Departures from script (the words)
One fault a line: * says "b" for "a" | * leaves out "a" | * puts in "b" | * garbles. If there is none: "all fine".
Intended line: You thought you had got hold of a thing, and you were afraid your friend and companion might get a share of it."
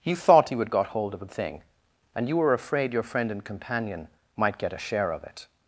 all fine